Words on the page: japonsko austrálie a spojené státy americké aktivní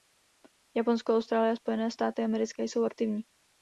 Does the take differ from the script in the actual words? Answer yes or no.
yes